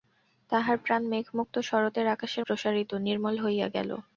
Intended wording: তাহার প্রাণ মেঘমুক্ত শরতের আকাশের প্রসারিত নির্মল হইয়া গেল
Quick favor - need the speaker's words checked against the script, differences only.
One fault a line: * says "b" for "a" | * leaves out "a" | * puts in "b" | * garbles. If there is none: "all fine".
all fine